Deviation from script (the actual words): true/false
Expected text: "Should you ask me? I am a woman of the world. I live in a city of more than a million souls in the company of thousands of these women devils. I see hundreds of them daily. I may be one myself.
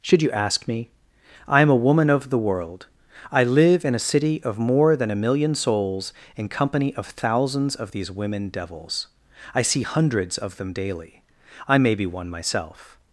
true